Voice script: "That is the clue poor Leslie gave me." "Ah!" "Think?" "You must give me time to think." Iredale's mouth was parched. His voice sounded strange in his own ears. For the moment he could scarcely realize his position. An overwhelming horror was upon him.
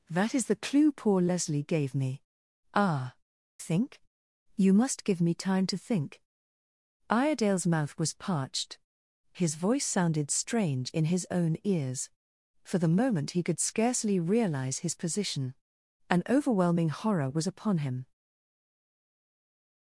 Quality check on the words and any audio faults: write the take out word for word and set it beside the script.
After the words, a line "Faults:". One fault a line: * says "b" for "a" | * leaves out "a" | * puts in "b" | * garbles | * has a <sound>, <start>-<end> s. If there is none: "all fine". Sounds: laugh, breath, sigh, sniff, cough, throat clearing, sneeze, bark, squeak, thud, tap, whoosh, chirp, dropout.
"That is the clue poor Leslie gave me." "Ah!" "Think?" "You must give me time to think." Iredale's mouth was parched. His voice sounded strange in his own ears. For the moment he could scarcely realize his position. An overwhelming horror was upon him.
Faults:
all fine